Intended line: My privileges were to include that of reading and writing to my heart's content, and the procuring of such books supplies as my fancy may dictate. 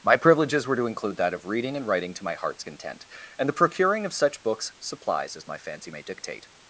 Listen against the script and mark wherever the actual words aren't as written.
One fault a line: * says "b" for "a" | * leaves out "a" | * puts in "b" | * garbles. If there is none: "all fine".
all fine